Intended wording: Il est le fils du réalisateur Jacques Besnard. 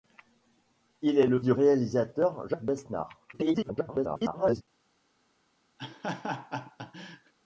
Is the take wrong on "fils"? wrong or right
wrong